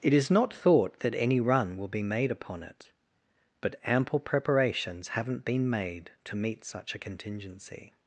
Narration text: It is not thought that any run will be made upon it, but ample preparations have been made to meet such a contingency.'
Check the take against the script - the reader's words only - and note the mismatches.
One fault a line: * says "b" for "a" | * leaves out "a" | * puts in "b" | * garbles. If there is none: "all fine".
* says "haven't" for "have"